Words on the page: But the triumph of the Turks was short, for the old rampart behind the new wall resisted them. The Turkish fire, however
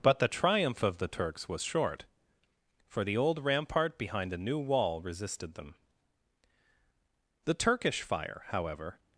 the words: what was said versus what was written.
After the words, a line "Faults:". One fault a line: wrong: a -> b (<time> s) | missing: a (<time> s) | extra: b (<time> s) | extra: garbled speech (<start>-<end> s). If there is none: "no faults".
But the triumph of the Turks was short, for the old rampart behind the new wall resisted them. The Turkish fire, however
Faults:
no faults